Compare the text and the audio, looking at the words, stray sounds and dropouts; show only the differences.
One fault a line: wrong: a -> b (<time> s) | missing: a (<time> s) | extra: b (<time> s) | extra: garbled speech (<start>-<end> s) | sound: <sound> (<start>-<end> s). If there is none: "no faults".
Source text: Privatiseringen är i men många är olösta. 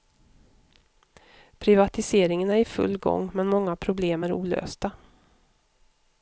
extra: full gång (2.6 s)
extra: problem (3.8 s)